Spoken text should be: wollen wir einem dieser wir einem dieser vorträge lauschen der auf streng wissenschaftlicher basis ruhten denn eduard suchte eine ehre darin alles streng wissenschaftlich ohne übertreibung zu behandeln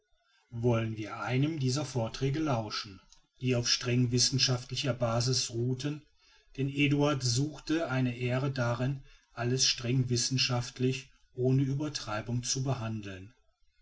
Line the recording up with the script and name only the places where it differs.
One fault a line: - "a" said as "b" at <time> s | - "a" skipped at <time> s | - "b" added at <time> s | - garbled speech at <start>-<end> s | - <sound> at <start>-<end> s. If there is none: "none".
- "wir einem dieser" skipped at 1.9 s
- "der" said as "die" at 3.4 s